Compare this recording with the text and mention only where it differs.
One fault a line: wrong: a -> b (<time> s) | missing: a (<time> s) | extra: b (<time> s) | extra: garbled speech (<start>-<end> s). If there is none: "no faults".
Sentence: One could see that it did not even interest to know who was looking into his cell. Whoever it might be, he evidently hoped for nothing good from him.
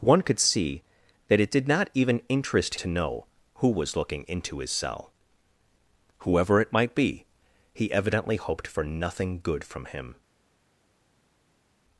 no faults